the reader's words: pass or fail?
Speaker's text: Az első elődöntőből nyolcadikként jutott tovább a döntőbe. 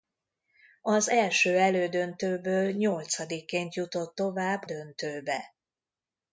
fail